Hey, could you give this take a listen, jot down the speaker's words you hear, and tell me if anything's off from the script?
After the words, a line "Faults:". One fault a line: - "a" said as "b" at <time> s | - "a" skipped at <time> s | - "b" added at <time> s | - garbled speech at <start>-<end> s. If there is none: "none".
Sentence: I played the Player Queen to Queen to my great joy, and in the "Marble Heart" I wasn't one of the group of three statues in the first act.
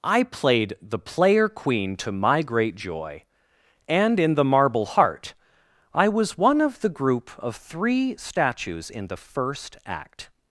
I played the Player Queen to my great joy, and in the "Marble Heart" I was one of the group of three statues in the first act.
Faults:
- "Queen to" skipped at 2.1 s
- "wasn't" said as "was" at 6.1 s